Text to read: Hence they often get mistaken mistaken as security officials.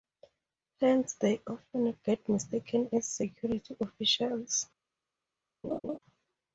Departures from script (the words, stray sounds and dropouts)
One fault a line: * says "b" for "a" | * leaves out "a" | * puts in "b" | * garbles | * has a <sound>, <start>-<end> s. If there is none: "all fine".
* leaves out "mistaken"
* has a laugh, 5.6-6.0 s